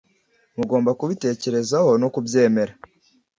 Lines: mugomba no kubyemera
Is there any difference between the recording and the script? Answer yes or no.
yes